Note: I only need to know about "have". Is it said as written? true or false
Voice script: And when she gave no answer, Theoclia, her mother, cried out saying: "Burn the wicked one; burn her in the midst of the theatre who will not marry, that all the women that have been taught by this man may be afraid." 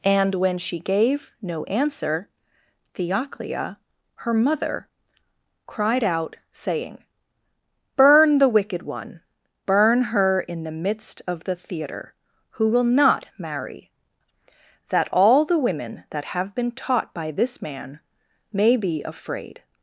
true